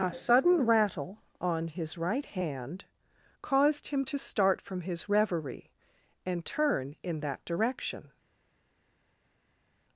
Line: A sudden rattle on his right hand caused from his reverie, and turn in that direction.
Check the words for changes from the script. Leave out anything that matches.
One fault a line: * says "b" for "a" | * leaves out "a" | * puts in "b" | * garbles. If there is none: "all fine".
* puts in "him to start"